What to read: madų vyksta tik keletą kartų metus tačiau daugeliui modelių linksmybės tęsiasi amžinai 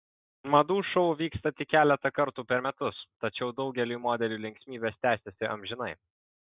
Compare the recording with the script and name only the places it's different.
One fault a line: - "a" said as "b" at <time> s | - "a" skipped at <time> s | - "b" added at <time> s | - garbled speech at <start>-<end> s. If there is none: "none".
- "šou" added at 0.9 s
- "per" added at 2.5 s